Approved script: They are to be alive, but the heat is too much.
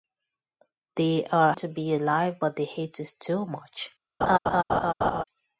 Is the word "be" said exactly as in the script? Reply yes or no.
yes